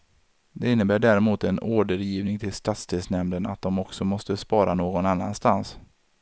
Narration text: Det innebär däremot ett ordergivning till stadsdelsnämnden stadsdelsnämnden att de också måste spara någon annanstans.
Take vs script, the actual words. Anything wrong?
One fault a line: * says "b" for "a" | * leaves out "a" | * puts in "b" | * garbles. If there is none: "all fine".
* says "en" for "ett"
* leaves out "stadsdelsnämnden"